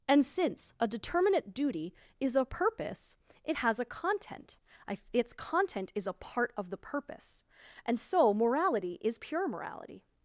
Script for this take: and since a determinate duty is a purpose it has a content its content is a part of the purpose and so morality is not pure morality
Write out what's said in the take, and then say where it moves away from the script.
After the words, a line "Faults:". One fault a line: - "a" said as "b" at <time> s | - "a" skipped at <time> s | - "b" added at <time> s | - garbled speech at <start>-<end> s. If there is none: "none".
and since a determinate duty is a purpose it has a content its content is a part of the purpose and so morality is pure morality
Faults:
- "not" skipped at 9.2 s